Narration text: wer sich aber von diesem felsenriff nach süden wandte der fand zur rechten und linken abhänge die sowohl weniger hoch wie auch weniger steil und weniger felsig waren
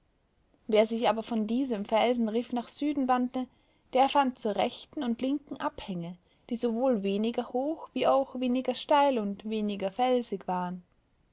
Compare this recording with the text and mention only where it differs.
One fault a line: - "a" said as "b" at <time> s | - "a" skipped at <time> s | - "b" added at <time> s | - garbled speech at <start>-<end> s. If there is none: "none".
none